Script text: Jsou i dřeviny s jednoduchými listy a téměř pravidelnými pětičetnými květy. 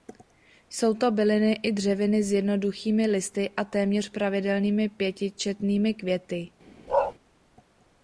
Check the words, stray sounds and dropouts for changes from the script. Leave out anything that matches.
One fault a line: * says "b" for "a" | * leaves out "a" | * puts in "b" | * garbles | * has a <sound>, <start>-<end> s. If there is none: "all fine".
* puts in "to byliny"
* has a bark, 6.9-7.1 s